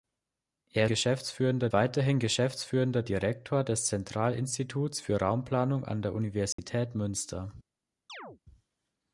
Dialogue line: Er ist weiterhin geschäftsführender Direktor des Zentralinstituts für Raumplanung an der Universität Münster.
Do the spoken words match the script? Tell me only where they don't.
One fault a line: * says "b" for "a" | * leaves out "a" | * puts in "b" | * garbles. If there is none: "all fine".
* says "geschäftsführender" for "ist"